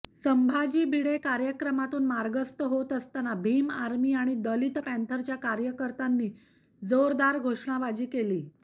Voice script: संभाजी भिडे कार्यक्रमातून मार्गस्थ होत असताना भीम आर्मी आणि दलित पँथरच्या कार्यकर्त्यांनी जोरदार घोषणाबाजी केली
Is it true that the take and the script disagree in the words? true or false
false